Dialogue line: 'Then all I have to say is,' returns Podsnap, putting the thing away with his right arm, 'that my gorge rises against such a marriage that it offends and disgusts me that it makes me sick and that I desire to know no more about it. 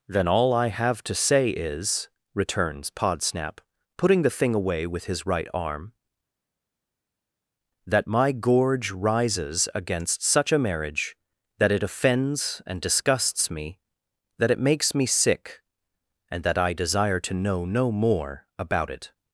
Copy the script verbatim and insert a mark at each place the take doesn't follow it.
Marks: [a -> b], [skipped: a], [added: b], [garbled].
'Then all I have to say is,' returns Podsnap, putting the thing away with his right arm, 'that my gorge rises against such a marriage that it offends and disgusts me that it makes me sick and that I desire to know no more about it.